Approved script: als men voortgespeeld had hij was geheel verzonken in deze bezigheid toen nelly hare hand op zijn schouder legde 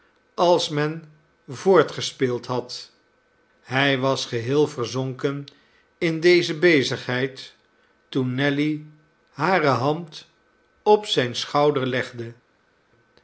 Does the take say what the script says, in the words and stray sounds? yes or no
yes